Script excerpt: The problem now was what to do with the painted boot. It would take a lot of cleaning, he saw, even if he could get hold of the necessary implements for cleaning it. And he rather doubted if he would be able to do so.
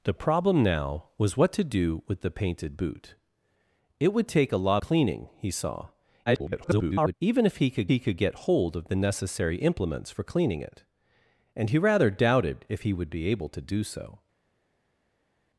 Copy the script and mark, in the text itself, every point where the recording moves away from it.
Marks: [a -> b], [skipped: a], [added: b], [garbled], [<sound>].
The problem now was what to do with the painted boot. It would take a lot [skipped: of] cleaning, he saw, [garbled] even if he could [added: he could] get hold of the necessary implements for cleaning it. And he rather doubted if he would be able to do so.